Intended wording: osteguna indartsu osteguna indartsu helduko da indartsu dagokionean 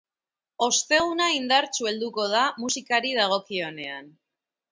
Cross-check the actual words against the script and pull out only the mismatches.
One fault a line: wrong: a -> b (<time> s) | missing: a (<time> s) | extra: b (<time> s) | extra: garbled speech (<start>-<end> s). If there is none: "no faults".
missing: osteguna indartsu (1.9 s)
wrong: indartsu -> musikari (2.6 s)